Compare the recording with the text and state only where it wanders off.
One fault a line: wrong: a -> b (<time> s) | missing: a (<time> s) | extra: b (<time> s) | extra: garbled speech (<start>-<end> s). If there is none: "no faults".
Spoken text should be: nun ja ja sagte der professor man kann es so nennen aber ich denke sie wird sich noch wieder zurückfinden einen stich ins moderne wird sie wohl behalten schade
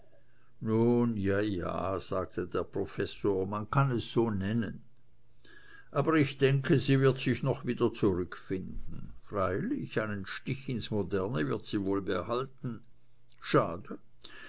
extra: freilich (9.2 s)